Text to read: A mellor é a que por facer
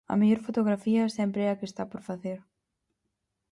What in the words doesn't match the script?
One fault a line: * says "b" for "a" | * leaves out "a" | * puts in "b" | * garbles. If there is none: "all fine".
* puts in "fotografía sempre"
* puts in "está"